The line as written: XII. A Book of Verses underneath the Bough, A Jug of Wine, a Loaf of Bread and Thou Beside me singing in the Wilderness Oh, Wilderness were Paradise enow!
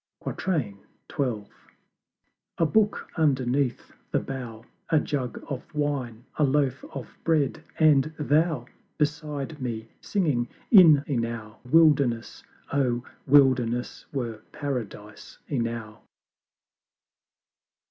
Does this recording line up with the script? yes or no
no